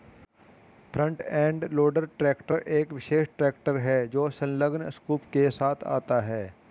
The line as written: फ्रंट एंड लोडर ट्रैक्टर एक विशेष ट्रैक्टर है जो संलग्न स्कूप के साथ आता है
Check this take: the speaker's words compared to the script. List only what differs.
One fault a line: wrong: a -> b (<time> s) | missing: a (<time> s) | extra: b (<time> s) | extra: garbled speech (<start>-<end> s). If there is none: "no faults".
no faults